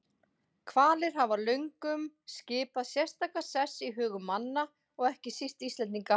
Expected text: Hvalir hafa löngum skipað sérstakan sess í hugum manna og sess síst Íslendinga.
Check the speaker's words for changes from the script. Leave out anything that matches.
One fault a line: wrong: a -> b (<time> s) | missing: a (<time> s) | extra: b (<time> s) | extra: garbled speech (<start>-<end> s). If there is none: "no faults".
wrong: sess -> ekki (5.1 s)